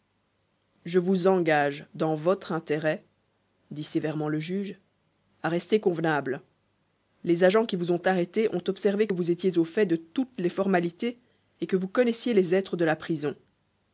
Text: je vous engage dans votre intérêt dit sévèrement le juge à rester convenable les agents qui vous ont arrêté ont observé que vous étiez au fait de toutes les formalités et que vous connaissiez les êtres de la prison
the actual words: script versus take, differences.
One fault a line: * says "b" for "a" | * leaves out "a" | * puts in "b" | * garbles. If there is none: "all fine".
all fine